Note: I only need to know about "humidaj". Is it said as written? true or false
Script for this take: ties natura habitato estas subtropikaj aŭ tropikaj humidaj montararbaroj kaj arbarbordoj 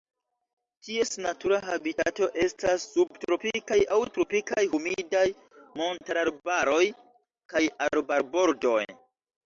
true